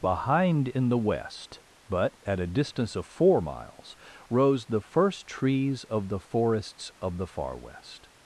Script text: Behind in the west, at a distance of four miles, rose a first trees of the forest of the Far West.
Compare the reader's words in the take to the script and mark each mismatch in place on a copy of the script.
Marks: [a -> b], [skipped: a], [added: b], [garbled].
Behind in the west, [added: but] at a distance of four miles, rose [a -> the] first trees of the [forest -> forests] of the Far West.